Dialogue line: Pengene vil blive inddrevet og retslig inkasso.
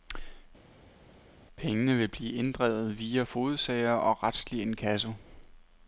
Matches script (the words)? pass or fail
fail